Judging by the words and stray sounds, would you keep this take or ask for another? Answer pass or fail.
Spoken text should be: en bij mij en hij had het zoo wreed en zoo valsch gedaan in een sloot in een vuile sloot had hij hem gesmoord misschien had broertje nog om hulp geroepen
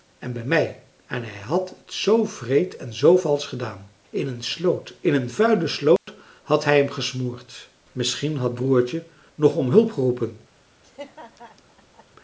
fail